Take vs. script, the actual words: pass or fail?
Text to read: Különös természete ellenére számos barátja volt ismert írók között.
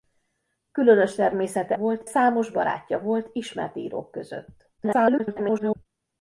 fail